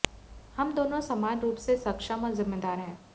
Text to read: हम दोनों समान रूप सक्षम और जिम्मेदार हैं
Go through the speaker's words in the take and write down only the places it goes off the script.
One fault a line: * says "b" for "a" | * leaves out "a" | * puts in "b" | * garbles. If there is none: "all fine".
* puts in "से"